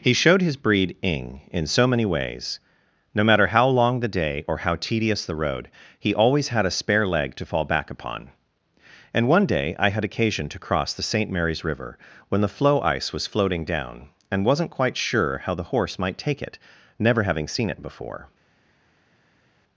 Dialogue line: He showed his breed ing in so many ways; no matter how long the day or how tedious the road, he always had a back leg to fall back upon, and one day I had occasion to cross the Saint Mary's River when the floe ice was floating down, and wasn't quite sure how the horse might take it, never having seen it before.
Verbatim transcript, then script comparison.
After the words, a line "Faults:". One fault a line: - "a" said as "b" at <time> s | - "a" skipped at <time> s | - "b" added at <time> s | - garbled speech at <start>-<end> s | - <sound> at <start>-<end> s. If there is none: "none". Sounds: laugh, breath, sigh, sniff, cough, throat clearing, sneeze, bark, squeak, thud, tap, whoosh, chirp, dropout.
He showed his breed ing in so many ways; no matter how long the day or how tedious the road, he always had a spare leg to fall back upon, and one day I had occasion to cross the Saint Mary's River when the floe ice was floating down, and wasn't quite sure how the horse might take it, never having seen it before.
Faults:
- "back" said as "spare" at 6.7 s